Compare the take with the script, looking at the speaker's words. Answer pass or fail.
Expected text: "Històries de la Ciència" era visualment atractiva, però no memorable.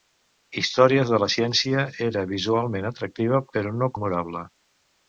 pass